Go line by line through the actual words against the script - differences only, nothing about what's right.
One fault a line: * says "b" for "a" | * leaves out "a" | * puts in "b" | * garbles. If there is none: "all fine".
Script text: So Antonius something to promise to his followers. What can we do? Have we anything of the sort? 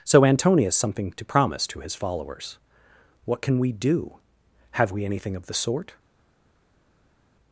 all fine